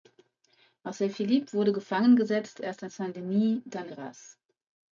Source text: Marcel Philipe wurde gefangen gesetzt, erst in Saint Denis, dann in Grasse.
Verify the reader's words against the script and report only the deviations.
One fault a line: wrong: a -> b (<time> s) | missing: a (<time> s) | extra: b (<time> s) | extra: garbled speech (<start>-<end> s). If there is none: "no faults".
missing: in (3.9 s)